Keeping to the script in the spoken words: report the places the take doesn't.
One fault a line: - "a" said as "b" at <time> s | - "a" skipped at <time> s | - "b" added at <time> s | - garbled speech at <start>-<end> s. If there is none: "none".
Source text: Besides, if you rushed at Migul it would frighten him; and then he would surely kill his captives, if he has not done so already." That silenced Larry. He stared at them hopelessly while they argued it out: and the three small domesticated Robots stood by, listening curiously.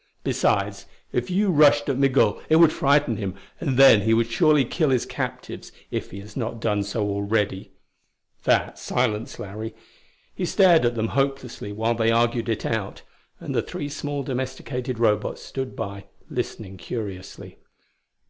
none